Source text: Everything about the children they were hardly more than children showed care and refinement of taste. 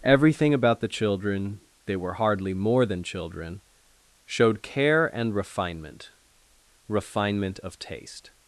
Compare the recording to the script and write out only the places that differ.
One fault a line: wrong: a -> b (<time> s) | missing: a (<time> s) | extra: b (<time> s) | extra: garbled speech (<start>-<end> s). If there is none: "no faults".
extra: refinement (6.9 s)